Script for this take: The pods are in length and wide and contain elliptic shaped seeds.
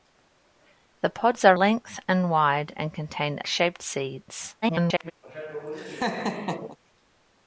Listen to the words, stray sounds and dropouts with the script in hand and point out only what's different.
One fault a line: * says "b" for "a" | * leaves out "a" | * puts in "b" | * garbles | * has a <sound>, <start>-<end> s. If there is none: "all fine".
* leaves out "in"
* leaves out "elliptic"
* garbles
* has a laugh, 5.2-6.8 s